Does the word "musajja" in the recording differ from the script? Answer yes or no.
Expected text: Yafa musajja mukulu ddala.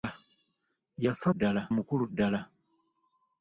yes